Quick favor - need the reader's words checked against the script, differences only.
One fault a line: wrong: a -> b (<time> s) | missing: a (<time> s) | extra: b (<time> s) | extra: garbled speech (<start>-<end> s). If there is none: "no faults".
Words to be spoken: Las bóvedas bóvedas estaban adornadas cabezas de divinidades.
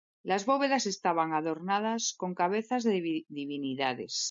missing: bóvedas (0.8 s)
extra: con (2.2 s)